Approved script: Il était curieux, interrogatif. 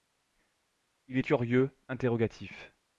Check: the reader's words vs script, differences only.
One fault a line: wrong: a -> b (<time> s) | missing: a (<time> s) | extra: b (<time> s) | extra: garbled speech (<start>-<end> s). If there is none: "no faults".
missing: était (1.2 s)